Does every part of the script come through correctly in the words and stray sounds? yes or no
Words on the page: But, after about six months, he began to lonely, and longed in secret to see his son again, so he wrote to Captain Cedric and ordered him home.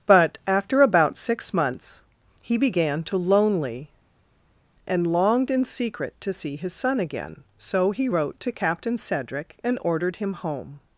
yes